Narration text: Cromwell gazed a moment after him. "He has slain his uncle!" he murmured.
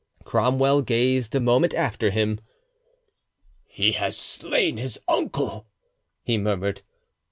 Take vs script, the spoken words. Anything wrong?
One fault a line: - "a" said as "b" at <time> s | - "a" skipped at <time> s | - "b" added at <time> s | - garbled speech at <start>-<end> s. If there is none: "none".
none